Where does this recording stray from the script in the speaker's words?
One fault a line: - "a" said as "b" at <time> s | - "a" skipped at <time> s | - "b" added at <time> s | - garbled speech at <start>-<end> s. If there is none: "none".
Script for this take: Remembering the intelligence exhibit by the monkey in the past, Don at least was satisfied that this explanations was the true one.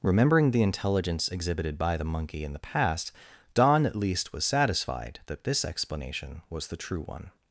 - "exhibit" said as "exhibited" at 1.3 s
- "explanations" said as "explanation" at 5.6 s